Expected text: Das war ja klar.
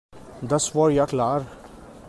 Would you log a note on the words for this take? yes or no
no